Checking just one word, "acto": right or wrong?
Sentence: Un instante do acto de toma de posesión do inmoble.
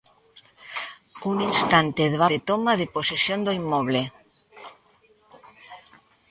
wrong